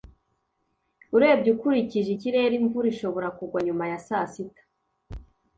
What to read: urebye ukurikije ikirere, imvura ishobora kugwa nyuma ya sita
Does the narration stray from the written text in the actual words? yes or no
yes